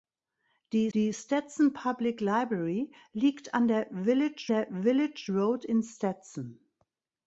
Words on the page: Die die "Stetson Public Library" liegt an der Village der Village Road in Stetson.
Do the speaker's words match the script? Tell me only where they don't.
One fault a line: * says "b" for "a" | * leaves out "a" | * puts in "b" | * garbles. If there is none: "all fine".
all fine